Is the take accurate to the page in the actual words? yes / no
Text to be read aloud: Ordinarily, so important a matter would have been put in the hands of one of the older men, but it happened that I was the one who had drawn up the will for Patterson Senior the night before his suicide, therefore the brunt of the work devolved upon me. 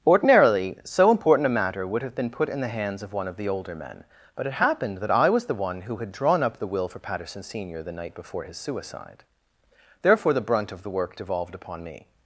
yes